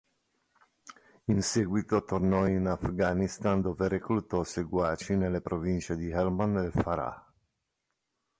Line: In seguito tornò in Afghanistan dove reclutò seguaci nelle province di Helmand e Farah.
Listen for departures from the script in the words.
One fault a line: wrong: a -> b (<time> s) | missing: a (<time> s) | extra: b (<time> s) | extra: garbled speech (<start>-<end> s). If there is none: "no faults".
no faults